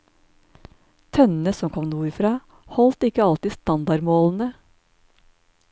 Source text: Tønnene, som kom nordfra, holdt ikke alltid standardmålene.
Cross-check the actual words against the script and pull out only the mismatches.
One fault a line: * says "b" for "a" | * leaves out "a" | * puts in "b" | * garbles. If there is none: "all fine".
all fine